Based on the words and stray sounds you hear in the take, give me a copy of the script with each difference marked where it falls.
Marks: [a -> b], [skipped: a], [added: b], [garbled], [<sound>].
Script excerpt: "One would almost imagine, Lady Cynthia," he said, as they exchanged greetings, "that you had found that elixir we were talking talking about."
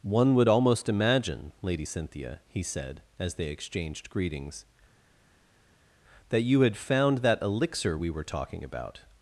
"One would almost imagine, Lady Cynthia," he said, as they exchanged greetings, "that you had found that elixir we were talking [skipped: talking] about."